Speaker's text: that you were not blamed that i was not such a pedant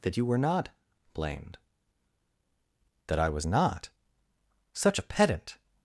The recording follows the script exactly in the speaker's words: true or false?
true